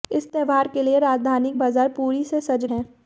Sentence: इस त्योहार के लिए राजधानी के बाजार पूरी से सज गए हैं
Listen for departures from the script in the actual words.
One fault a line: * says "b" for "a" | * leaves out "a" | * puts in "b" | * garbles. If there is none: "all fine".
* leaves out "के"
* leaves out "गए"